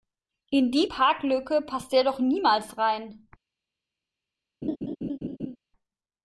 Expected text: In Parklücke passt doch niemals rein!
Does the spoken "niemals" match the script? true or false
true